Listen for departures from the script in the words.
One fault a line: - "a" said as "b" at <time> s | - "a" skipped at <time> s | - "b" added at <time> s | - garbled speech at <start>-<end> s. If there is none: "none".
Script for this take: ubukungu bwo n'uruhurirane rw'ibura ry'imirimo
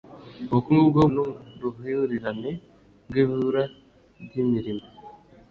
none